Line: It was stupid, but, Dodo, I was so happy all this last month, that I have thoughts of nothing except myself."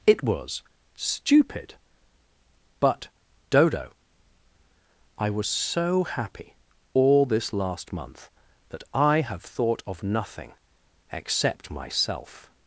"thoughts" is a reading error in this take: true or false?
true